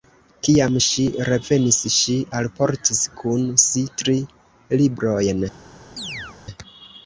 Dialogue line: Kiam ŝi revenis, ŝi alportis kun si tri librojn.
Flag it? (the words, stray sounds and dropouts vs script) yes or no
yes